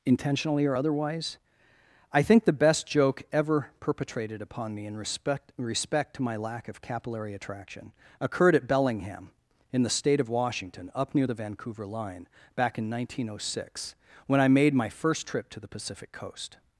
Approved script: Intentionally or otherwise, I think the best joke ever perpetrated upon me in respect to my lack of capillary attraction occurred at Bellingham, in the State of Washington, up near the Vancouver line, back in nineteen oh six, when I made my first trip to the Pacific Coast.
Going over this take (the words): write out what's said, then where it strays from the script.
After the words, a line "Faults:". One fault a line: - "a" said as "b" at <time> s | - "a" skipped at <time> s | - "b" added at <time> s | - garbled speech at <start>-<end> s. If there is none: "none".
Intentionally or otherwise, I think the best joke ever perpetrated upon me in respect respect to my lack of capillary attraction occurred at Bellingham, in the State of Washington, up near the Vancouver line, back in nineteen oh six, when I made my first trip to the Pacific Coast.
Faults:
- "respect" added at 5.6 s